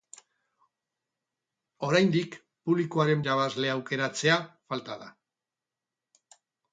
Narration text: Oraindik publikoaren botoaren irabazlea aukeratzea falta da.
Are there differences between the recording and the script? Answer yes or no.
yes